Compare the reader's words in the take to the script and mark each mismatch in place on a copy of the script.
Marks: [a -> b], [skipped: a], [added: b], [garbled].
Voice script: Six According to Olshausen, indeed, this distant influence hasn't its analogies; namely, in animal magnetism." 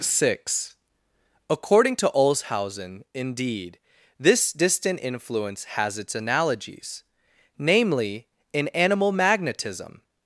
Six According to Olshausen, indeed, this distant influence [hasn't -> has] its analogies; namely, in animal magnetism."